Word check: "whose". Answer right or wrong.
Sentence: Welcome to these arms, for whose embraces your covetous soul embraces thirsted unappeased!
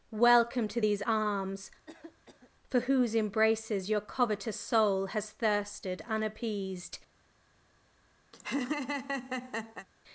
right